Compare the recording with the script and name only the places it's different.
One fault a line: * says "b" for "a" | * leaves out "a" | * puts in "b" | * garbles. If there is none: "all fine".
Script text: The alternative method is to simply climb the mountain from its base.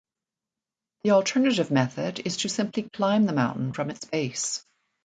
all fine